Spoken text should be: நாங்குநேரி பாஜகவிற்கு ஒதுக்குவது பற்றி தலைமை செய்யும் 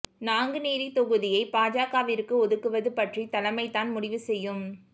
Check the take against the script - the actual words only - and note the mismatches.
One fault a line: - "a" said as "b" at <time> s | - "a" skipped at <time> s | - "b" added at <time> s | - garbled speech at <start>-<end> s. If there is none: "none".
- "தொகுதியை" added at 0.9 s
- "தான் முடிவு" added at 3.7 s